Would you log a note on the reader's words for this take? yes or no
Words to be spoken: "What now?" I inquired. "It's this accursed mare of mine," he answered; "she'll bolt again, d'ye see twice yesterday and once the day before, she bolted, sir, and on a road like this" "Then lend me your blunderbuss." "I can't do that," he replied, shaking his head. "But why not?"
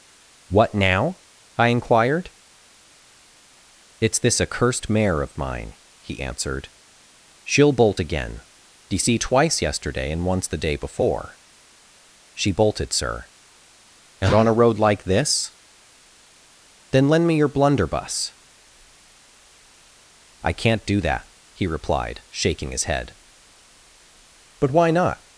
no